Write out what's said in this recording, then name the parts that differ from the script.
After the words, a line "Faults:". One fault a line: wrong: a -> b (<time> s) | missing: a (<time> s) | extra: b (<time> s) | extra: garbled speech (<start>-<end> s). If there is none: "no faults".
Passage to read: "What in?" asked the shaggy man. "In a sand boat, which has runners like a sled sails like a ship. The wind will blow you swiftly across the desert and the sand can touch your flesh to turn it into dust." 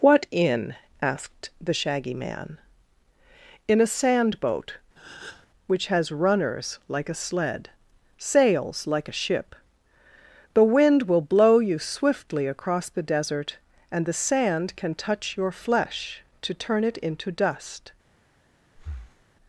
"What in?" asked the shaggy man. "In a sand boat, which has runners like a sled sails like a ship. The wind will blow you swiftly across the desert and the sand can touch your flesh to turn it into dust."
Faults:
no faults